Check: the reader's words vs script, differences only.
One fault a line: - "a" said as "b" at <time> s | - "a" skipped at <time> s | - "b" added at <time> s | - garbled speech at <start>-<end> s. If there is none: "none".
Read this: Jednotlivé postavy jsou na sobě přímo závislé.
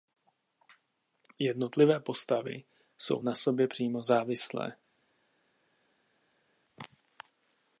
none